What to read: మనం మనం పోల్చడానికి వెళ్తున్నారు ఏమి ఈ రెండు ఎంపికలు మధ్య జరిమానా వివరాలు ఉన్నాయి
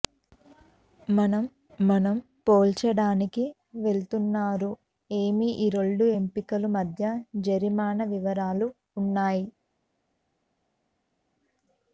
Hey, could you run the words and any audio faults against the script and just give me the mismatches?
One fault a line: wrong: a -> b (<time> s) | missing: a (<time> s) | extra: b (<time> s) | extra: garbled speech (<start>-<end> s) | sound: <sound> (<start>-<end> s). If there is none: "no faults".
no faults